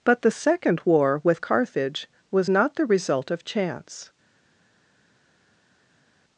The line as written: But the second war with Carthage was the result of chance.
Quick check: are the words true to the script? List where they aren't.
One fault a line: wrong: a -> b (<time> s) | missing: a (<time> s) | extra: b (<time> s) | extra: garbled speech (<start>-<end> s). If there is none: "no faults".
extra: not (2.5 s)